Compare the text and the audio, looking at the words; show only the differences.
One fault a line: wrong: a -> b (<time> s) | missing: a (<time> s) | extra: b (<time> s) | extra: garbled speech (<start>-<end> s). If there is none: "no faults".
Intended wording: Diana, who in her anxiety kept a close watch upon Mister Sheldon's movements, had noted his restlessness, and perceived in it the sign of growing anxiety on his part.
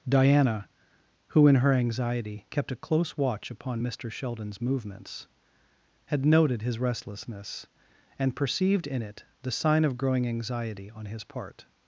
no faults